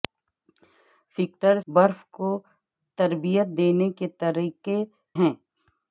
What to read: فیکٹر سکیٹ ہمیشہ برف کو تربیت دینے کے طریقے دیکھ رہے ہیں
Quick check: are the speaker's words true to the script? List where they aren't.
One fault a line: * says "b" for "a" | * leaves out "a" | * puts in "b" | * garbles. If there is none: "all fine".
* leaves out "سکیٹ ہمیشہ"
* leaves out "دیکھ رہے"